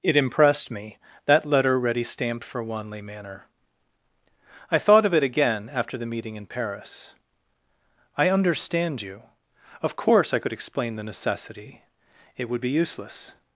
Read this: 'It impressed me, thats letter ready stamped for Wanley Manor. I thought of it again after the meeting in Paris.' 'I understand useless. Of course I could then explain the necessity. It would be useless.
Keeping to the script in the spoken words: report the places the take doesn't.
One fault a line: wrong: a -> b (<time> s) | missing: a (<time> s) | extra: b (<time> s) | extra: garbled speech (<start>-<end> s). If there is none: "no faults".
wrong: thats -> that (1.2 s)
wrong: useless -> you (9.0 s)
missing: then (10.5 s)